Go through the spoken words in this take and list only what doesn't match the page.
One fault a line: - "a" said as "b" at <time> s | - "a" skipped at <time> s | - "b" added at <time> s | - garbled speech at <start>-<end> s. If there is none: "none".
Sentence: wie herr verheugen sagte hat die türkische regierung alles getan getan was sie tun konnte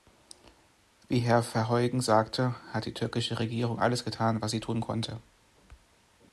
- "getan" skipped at 4.4 s